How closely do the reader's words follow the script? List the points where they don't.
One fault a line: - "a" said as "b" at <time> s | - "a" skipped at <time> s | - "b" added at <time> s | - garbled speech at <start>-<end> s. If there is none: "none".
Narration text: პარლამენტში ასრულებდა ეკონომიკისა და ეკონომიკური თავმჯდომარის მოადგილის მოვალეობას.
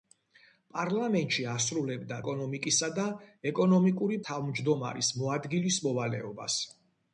none